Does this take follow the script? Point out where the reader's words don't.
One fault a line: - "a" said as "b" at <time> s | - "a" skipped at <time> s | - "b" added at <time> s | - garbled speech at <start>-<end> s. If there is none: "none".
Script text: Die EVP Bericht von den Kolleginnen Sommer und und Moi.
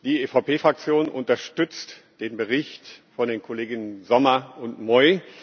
- "Fraktion unterstützt den" added at 0.5 s
- "und" skipped at 4.8 s